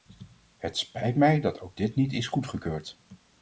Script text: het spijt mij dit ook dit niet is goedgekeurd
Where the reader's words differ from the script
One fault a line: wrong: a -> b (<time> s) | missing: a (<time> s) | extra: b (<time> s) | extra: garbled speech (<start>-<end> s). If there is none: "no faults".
wrong: dit -> dat (1.4 s)